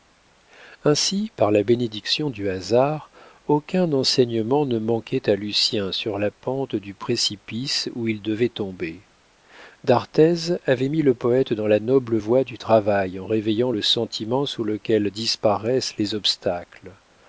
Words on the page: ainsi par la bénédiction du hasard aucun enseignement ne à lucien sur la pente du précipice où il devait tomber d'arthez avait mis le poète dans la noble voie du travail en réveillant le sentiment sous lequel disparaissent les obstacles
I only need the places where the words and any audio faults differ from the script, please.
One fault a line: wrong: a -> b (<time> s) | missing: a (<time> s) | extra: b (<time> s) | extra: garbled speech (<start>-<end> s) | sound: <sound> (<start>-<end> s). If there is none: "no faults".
extra: manquait (4.8 s)